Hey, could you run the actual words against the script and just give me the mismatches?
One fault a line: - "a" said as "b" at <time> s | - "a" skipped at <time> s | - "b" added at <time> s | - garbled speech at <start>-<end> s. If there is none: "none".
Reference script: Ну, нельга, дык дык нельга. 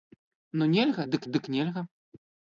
none